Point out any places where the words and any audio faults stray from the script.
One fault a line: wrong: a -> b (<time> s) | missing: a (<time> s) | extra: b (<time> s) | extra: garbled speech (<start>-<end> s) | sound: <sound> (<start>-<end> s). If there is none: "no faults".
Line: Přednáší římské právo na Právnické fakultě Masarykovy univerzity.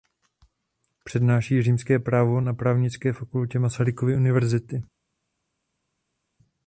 no faults